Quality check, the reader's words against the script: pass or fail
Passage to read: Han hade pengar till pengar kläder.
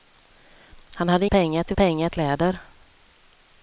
pass